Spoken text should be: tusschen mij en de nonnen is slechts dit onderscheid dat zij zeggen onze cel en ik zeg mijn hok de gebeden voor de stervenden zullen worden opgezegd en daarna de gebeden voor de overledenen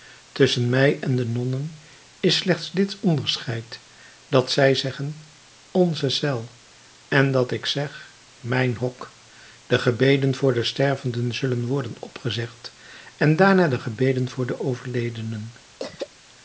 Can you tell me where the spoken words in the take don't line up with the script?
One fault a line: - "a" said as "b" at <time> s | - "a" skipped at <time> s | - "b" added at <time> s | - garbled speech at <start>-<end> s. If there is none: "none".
- "dat" added at 7.3 s